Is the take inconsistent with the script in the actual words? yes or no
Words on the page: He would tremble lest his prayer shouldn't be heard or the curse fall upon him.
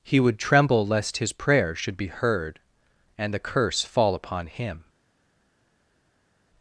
yes